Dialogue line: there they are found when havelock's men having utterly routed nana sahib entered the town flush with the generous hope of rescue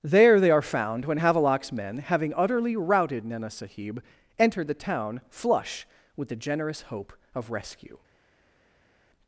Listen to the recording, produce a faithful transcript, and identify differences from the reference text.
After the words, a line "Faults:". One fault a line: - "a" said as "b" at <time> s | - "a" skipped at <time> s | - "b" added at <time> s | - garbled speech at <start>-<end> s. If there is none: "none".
there they are found when havelock's men having utterly routed nana sahib entered the town flush with the generous hope of rescue
Faults:
none